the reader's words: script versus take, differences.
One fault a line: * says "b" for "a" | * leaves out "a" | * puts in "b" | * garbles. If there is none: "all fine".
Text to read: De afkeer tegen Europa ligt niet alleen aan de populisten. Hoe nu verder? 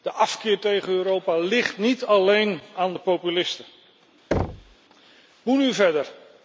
all fine